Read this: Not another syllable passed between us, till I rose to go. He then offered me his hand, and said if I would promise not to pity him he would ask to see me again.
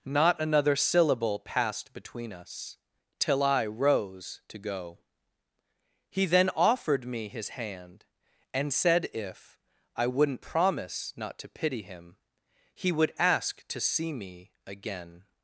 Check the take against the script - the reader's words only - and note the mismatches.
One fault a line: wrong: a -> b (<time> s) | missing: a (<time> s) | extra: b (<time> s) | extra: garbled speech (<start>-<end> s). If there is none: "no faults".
wrong: would -> wouldn't (10.1 s)